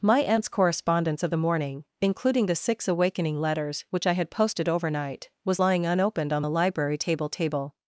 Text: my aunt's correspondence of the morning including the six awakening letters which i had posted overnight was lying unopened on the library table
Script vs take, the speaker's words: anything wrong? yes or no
yes